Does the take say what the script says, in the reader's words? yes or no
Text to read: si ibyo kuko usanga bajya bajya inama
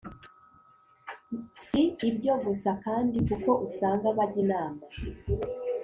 no